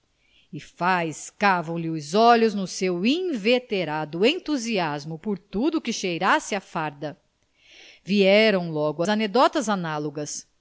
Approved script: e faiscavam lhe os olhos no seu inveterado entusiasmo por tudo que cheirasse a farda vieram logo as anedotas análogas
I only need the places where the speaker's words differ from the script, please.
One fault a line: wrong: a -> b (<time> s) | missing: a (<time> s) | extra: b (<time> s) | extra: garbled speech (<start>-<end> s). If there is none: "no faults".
missing: as (9.0 s)